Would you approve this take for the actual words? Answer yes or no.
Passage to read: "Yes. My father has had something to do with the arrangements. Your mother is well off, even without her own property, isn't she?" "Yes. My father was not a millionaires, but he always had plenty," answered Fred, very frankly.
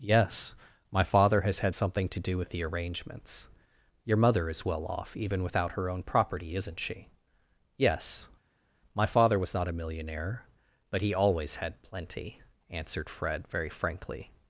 no